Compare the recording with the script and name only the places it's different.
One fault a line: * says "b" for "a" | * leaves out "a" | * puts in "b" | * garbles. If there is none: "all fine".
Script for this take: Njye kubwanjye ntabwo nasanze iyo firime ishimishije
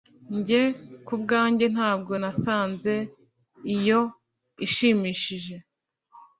* leaves out "firime"